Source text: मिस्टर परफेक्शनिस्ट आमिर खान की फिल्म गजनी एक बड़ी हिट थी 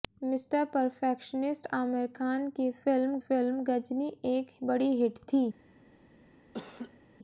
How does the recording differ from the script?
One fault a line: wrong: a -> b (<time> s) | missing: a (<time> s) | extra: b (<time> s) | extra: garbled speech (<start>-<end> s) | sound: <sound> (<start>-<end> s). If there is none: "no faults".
extra: फिल्म (3.2 s)
sound: laugh (6.5-7.0 s)